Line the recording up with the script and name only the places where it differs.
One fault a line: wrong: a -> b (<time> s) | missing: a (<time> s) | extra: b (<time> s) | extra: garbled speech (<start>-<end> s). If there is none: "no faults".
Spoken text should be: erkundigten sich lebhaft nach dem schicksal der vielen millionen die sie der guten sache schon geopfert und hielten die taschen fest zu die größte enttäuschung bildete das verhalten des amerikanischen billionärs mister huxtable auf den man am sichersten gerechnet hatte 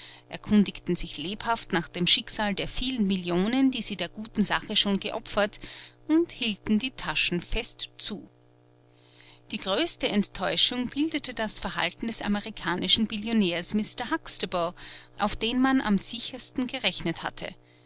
no faults